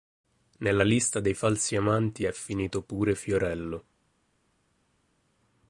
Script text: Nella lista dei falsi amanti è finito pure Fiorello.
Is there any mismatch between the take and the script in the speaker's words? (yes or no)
no